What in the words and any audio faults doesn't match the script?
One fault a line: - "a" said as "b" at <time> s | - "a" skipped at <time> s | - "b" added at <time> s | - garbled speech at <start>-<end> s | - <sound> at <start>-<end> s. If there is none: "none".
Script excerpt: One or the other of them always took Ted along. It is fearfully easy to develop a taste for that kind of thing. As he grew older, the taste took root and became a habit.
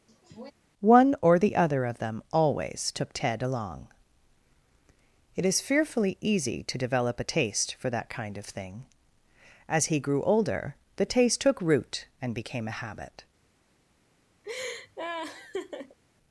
- sneeze at 0.1-0.5 s
- laugh at 14.4-16.0 s